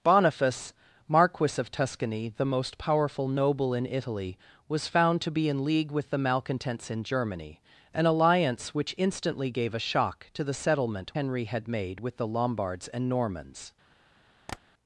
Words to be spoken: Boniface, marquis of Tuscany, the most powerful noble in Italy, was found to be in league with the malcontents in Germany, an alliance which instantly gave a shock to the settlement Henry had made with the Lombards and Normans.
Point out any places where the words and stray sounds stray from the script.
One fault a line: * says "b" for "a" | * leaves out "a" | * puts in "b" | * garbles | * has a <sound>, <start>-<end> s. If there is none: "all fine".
* has a tap, 14.5-14.6 s